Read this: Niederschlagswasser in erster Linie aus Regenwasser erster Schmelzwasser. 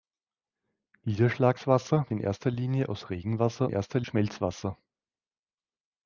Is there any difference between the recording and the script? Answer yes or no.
no